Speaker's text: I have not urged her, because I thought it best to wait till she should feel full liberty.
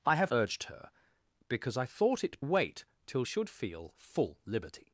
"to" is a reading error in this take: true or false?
true